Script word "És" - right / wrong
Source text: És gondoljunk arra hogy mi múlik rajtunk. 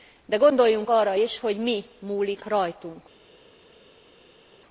wrong